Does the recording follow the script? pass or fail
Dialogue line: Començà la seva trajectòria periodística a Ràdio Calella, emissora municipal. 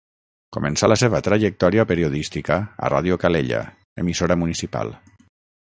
pass